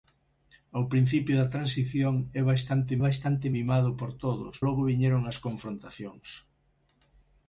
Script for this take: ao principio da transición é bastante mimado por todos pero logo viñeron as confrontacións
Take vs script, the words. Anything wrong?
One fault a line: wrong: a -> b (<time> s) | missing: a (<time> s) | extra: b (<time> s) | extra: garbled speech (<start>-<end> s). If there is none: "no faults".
extra: bastante (3.1 s)
missing: pero (4.6 s)